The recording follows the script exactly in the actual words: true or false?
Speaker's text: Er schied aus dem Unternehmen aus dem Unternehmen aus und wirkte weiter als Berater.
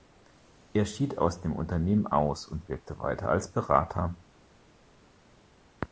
false